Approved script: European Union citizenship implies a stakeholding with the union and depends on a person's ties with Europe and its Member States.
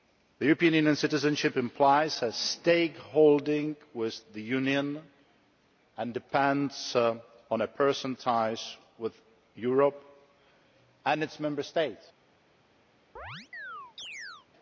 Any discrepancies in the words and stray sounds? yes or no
yes